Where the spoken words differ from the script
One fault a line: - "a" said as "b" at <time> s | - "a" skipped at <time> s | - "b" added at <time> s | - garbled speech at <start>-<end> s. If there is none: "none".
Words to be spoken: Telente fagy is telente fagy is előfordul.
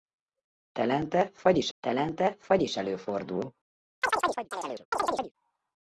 none